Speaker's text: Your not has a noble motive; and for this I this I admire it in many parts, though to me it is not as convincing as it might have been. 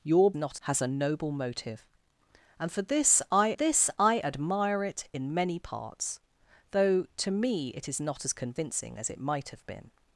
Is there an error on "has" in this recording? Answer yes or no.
no